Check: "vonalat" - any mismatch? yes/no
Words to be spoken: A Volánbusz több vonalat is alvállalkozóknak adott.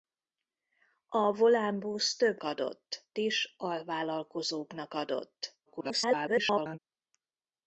yes